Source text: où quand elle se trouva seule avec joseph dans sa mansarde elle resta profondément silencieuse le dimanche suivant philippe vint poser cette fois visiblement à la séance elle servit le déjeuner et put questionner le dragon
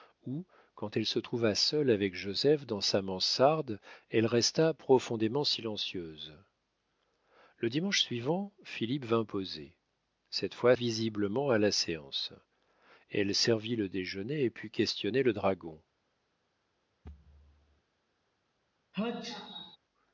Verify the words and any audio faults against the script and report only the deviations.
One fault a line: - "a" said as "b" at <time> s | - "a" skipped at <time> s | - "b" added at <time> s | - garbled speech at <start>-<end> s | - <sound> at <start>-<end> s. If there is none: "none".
- thud at 17.0-17.8 s
- sneeze at 18.9-19.8 s